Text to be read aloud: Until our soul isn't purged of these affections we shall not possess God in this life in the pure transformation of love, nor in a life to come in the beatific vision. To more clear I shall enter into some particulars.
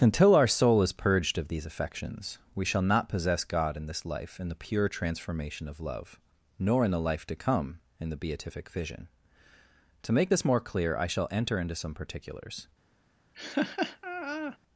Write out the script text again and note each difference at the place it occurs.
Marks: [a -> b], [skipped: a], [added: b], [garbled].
Until our soul [isn't -> is] purged of these affections we shall not possess God in this life in the pure transformation of love, nor in [a -> the] life to come in the beatific vision. To [added: make this] more clear I shall enter into some particulars.